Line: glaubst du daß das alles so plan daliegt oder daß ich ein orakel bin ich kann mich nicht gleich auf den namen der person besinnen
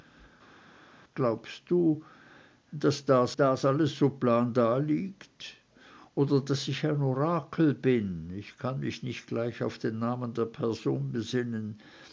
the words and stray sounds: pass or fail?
fail